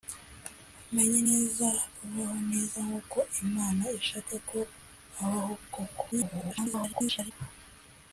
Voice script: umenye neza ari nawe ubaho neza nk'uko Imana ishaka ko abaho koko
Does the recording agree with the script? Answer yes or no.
no